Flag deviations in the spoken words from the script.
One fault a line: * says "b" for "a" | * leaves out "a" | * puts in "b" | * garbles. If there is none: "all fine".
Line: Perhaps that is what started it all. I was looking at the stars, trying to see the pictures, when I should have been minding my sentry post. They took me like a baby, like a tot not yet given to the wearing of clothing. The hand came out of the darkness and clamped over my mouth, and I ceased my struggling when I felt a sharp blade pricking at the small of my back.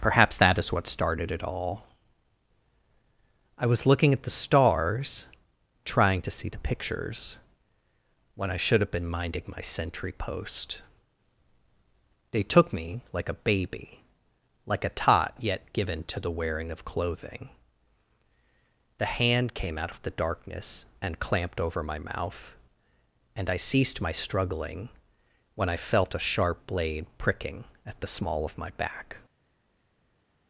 * leaves out "not"